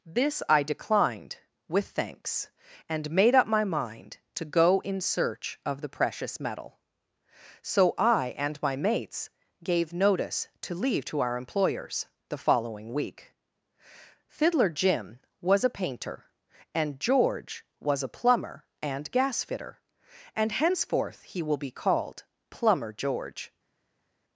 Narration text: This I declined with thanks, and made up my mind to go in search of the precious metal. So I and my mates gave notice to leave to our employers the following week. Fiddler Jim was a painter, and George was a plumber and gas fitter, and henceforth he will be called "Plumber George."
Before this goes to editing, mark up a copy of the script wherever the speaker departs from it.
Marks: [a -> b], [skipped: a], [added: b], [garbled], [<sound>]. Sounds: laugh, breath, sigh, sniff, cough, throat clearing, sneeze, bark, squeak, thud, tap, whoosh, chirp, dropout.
This I declined with thanks, and made up my mind to go in search of the precious metal. So I and my mates gave notice to leave to our employers the following week. Fiddler Jim was a painter, and George was a plumber and gas fitter, and henceforth he will be called "Plumber George."